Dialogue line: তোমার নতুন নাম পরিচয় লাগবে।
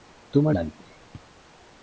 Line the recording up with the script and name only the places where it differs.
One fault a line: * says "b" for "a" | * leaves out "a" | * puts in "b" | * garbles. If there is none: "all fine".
* leaves out "নতুন নাম পরিচয়"